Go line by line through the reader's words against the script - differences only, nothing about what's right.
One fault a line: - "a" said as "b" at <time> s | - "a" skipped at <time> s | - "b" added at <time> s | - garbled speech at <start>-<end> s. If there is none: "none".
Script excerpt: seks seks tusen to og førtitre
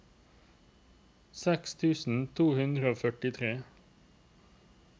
- "seks" skipped at 1.8 s
- "hundre" added at 2.6 s